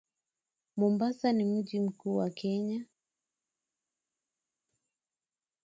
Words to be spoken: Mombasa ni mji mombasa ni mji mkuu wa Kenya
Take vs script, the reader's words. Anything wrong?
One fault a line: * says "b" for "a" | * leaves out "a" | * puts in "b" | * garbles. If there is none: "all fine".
* leaves out "mombasa ni mji"